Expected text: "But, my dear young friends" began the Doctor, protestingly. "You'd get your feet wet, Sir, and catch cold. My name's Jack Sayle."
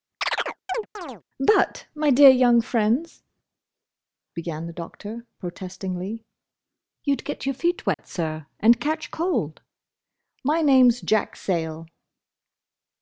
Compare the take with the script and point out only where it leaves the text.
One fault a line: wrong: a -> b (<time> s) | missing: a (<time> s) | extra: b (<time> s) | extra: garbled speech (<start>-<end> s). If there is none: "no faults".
no faults